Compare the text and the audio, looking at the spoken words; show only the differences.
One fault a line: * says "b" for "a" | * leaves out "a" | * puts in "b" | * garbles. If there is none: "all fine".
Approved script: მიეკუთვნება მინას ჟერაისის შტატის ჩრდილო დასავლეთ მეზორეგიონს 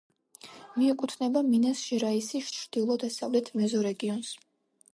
* leaves out "შტატის"